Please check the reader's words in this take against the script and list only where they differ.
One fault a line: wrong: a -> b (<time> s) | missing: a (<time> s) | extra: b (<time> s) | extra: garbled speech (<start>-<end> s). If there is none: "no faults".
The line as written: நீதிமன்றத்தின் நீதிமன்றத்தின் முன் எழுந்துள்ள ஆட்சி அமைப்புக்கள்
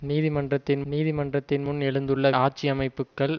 no faults